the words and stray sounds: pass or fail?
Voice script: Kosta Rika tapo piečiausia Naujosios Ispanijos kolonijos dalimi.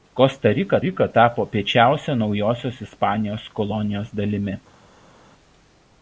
fail